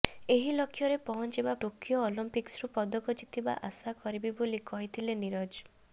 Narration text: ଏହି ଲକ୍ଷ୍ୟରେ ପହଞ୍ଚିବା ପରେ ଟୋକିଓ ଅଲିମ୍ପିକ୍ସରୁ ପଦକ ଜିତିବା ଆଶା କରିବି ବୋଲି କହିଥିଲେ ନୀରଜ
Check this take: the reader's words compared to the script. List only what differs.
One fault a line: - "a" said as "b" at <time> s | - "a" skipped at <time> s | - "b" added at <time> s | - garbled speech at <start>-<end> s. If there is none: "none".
- "ପରେ" skipped at 1.5 s